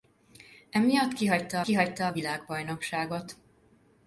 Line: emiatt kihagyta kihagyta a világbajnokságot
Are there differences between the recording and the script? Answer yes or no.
no